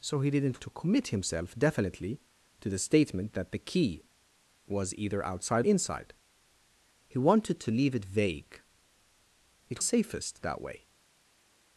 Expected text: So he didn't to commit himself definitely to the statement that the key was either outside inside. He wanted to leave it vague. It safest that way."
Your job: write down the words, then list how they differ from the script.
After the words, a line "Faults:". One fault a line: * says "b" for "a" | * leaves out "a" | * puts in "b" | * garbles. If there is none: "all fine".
So he didn't to commit himself definitely to the statement that the key was either outside inside. He wanted to leave it vague. It safest that way."
Faults:
all fine